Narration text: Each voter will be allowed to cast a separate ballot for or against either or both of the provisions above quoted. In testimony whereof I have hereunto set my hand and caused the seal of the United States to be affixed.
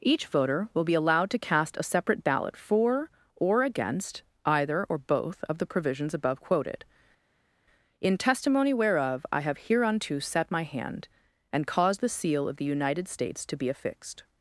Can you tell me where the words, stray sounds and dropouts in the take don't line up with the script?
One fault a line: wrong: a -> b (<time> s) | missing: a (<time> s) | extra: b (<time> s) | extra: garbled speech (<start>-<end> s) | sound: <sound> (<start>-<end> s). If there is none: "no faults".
no faults